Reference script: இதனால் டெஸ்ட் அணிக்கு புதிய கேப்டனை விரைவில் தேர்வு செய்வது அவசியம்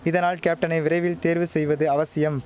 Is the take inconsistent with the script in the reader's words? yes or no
yes